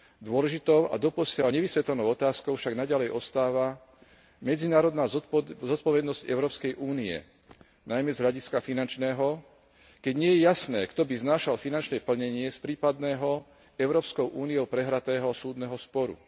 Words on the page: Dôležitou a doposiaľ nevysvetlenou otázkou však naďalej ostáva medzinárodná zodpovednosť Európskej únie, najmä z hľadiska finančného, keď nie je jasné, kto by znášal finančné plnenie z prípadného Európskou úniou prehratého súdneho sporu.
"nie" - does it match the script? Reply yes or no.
yes